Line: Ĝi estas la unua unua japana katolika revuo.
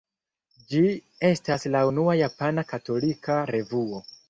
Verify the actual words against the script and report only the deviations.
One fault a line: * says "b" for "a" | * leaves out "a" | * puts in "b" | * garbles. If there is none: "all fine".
* leaves out "unua"